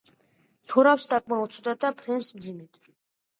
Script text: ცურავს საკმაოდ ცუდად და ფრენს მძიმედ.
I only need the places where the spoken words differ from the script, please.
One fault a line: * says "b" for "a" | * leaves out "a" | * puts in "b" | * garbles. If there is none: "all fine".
all fine